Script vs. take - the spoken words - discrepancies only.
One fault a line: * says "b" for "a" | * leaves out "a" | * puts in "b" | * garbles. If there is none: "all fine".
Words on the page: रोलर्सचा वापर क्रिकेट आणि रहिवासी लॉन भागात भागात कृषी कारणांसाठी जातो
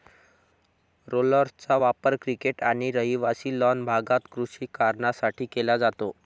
* leaves out "भागात"
* puts in "केला"